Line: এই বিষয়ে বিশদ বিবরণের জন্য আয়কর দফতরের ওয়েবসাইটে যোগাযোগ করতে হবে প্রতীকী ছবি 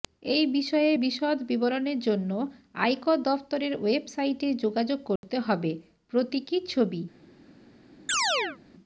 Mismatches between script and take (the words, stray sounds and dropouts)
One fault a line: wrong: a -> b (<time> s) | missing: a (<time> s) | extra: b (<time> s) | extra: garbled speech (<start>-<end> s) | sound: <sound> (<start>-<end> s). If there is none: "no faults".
sound: dropout (5.2-5.2 s)
sound: chirp (8.1-8.6 s)